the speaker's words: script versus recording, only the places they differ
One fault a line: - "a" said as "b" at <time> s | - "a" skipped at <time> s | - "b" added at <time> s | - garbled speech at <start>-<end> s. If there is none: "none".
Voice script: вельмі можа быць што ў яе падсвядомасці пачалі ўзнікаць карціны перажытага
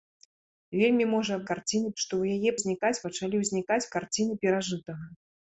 - "быць" said as "карціны" at 1.5 s
- "падсвядомасці" said as "ўзнікаць" at 2.6 s